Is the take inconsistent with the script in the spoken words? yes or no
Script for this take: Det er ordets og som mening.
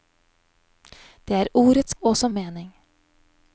no